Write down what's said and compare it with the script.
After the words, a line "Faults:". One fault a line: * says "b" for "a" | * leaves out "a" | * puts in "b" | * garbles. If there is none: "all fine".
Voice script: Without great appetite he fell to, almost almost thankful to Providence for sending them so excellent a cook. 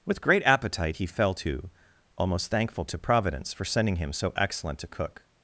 With great appetite he fell to, almost thankful to Providence for sending him so excellent a cook.
Faults:
* says "With" for "Without"
* leaves out "almost"
* says "him" for "them"